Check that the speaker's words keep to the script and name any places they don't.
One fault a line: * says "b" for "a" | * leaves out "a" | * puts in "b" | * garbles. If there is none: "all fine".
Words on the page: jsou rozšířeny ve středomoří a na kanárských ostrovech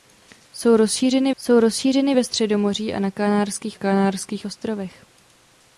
* puts in "jsou rozšířeny"
* puts in "kanárských"